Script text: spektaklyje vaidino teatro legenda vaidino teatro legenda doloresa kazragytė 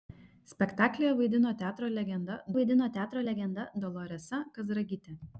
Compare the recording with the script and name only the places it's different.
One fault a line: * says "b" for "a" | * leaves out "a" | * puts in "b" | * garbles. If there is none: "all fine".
all fine